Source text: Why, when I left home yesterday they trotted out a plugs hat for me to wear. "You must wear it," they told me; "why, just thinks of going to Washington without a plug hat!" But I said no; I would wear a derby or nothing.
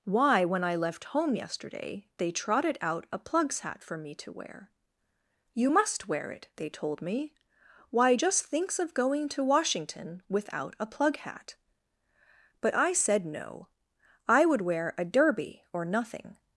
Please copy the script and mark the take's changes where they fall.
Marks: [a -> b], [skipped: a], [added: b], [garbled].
Why, when I left home yesterday they trotted out a plugs hat for me to wear. "You must wear it," they told me; "why, just thinks of going to Washington without a plug hat!" But I said no; I would wear a derby or nothing.